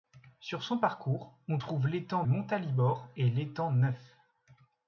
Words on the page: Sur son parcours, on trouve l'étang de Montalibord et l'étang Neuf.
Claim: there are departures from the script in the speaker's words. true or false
true